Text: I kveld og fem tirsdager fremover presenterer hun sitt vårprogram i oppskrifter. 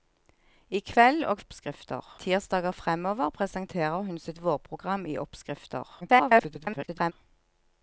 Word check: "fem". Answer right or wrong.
wrong